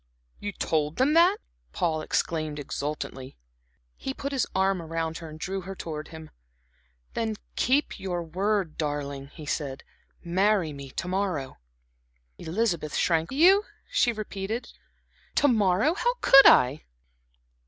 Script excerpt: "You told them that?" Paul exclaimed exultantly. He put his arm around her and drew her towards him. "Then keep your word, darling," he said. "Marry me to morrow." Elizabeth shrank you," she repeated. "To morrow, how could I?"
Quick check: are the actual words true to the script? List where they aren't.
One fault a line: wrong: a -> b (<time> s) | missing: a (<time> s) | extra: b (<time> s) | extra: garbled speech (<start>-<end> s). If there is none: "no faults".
no faults